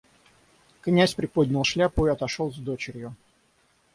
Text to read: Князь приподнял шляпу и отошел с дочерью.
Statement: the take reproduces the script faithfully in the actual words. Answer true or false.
true